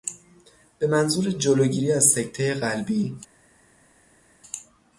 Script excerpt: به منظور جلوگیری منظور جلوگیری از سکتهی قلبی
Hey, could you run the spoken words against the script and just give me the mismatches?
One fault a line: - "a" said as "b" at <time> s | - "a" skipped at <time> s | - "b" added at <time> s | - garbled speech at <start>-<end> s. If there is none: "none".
- "منظور جلوگیری" skipped at 1.9 s